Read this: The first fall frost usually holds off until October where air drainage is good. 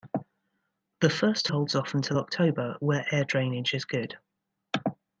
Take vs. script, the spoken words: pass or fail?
fail